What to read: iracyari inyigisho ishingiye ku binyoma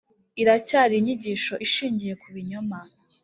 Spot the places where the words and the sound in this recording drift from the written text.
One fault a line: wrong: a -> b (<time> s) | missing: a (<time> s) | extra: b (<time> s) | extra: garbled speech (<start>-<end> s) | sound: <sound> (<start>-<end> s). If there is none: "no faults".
no faults